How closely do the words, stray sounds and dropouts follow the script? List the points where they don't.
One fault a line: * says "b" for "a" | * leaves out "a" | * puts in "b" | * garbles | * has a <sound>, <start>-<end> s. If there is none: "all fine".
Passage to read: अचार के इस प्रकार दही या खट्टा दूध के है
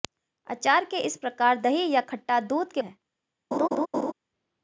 * has a laugh, 3.5-4.1 s